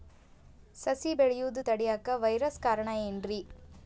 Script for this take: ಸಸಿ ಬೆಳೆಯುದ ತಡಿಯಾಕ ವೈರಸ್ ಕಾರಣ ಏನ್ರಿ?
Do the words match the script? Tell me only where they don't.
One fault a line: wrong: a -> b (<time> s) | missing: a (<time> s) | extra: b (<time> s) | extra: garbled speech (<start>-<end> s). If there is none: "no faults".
no faults